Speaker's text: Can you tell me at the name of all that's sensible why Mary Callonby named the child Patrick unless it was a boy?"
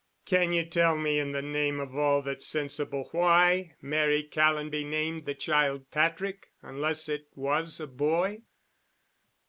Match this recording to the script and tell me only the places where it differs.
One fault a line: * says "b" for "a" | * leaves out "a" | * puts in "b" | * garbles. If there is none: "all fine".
* says "in" for "at"